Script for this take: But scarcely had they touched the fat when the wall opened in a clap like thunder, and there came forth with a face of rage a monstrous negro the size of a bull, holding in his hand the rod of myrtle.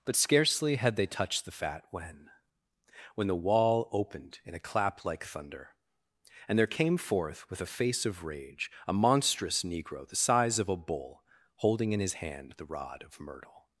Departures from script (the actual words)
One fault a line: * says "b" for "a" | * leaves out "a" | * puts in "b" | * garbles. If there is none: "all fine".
* puts in "when"